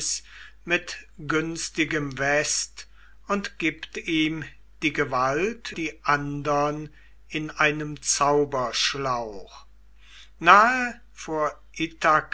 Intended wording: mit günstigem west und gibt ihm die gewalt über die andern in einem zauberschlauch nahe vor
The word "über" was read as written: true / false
false